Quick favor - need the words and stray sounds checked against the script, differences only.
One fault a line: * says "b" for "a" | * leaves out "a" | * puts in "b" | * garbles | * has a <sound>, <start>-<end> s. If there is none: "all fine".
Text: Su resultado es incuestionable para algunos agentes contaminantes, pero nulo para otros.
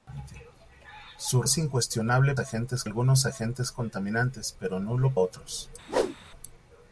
* leaves out "resultado"
* says "agentes" for "para"
* leaves out "para"
* has a whoosh, 5.9-6.2 s